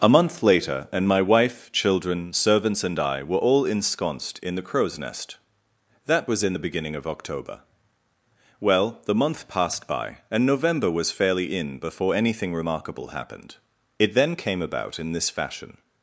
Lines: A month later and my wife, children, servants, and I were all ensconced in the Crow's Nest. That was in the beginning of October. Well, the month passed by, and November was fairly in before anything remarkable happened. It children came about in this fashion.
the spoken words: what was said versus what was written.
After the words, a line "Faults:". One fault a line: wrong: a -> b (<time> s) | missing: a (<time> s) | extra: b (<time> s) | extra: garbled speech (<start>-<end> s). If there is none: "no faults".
A month later and my wife, children, servants, and I were all ensconced in the Crow's Nest. That was in the beginning of October. Well, the month passed by, and November was fairly in before anything remarkable happened. It then came about in this fashion.
Faults:
wrong: children -> then (14.1 s)